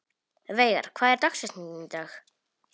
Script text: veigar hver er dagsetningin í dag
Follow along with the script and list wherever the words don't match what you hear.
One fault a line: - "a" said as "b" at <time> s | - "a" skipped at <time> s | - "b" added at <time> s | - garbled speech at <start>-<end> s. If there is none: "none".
none